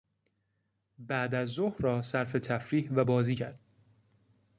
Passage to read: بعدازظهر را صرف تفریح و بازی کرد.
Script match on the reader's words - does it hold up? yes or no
yes